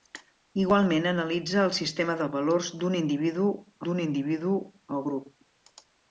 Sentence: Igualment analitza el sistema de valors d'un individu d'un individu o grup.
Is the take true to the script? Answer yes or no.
yes